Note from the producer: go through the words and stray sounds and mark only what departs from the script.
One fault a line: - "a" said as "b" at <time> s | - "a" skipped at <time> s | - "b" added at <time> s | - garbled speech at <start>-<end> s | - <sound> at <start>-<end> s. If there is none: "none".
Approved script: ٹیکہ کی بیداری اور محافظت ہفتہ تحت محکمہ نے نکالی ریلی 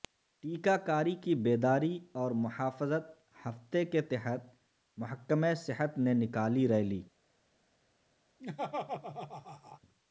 - "کاری" added at 0.8 s
- "کے" added at 3.9 s
- "صحت" added at 5.6 s
- laugh at 8.4-9.8 s